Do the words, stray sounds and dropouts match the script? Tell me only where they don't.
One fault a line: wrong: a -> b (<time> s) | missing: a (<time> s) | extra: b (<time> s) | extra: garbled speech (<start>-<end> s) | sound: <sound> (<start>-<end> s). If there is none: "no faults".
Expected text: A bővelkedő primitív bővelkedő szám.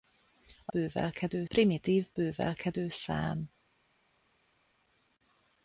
no faults